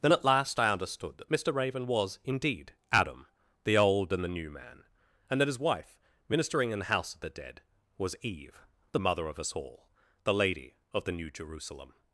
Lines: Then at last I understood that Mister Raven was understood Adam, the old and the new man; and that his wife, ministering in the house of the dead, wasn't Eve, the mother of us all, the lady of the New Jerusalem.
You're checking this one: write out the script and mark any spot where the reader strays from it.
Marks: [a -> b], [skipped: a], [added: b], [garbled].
Then at last I understood that Mister Raven was [understood -> indeed] Adam, the old and the new man; and that his wife, ministering in the house of the dead, [wasn't -> was] Eve, the mother of us all, the lady of the New Jerusalem.